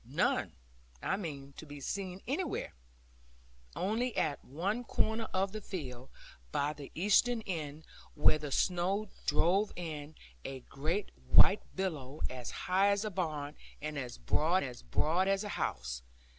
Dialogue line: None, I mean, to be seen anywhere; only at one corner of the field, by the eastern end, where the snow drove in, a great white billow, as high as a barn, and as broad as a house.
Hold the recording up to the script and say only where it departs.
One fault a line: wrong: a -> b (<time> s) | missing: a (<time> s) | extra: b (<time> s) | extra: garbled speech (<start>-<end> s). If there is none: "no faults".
extra: broad as (14.8 s)